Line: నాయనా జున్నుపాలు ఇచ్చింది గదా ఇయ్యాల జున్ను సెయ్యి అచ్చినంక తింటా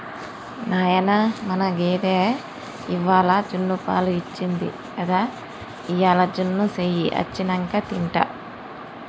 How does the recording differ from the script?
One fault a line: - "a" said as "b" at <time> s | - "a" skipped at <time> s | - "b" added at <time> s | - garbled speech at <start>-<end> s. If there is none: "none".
- "మన గేదె ఇవ్వాల" added at 1.4 s